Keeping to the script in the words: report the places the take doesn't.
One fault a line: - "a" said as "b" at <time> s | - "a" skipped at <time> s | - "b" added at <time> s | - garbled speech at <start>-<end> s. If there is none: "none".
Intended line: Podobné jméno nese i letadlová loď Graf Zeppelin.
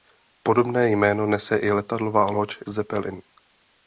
- "Graf" skipped at 2.6 s